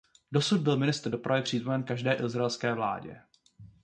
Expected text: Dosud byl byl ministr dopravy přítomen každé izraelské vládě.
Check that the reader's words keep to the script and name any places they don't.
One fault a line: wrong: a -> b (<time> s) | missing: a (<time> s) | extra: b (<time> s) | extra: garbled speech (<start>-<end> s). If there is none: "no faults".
missing: byl (0.8 s)